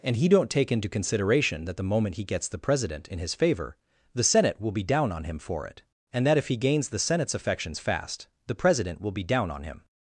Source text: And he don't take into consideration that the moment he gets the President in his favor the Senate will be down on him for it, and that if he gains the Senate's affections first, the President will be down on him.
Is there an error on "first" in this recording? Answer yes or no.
yes